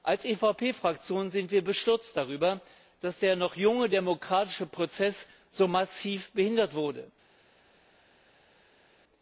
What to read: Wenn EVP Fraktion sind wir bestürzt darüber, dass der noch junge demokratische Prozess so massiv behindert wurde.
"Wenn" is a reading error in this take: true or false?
true